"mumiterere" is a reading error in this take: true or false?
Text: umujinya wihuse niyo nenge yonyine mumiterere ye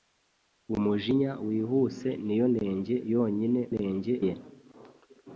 true